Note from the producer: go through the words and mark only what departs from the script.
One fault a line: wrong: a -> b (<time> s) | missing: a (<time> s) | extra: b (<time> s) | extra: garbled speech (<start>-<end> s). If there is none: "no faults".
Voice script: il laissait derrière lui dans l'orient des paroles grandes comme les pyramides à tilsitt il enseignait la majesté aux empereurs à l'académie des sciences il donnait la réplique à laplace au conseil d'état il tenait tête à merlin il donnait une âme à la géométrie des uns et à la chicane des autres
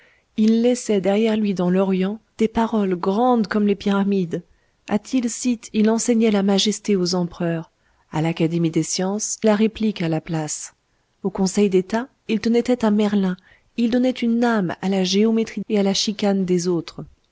missing: il donnait (9.4 s)
missing: des uns (15.6 s)